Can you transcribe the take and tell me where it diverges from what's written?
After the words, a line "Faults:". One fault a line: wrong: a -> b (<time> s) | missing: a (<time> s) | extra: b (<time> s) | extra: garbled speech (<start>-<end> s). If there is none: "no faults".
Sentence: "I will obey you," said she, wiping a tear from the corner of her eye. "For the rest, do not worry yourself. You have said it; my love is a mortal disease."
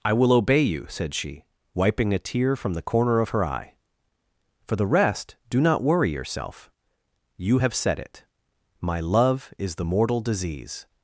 "I will obey you," said she, wiping a tear from the corner of her eye. "For the rest, do not worry yourself. You have said it; my love is the mortal disease."
Faults:
wrong: a -> the (9.8 s)